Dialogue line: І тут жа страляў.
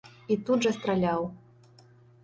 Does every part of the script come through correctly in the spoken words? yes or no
yes